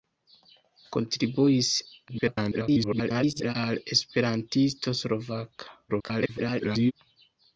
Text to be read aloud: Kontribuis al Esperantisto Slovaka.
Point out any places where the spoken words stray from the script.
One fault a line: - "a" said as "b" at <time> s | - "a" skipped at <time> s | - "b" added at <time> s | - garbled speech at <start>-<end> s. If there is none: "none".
- garbled speech at 2.1-3.6 s
- garbled speech at 5.9-6.9 s